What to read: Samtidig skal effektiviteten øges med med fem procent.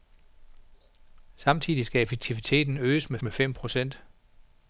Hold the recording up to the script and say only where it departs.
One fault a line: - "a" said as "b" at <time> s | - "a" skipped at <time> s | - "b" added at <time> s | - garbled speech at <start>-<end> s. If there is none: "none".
none